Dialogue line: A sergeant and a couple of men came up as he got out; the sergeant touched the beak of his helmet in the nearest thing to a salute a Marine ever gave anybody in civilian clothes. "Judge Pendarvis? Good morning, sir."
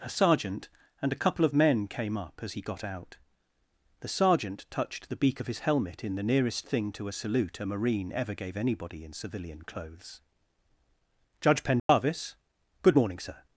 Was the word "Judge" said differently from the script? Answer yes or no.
no